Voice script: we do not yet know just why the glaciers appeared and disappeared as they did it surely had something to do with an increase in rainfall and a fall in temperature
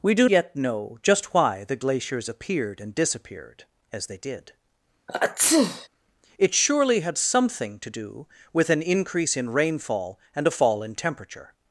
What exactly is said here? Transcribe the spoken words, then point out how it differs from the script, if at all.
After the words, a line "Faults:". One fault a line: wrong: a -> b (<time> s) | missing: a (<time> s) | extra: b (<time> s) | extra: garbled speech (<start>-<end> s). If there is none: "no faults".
we do yet know just why the glaciers appeared and disappeared as they did it surely had something to do with an increase in rainfall and a fall in temperature
Faults:
missing: not (0.3 s)